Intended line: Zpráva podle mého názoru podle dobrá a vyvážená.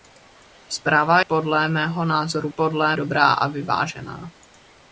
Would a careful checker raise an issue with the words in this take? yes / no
no